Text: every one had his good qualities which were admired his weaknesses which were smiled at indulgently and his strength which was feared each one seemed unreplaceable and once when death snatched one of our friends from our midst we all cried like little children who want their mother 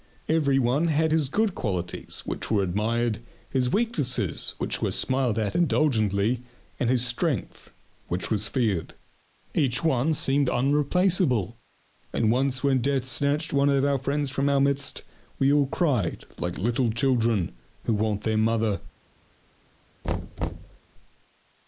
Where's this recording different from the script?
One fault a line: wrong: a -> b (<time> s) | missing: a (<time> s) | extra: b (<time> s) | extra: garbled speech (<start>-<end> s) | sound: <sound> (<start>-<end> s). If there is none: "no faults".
sound: thud (20.0-20.8 s)